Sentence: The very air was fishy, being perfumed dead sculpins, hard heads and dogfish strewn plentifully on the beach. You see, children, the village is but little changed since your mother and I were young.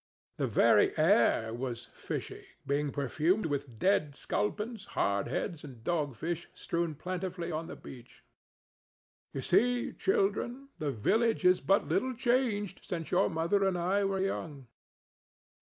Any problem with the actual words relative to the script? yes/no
yes